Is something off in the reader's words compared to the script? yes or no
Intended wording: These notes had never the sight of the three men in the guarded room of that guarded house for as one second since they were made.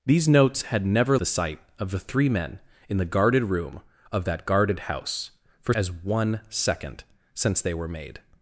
no